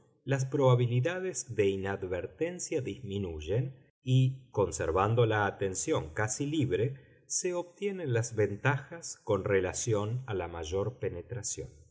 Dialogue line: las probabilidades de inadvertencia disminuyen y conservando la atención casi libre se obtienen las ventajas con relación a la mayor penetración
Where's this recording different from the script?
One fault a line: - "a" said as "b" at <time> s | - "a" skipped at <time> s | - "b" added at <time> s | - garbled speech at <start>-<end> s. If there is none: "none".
none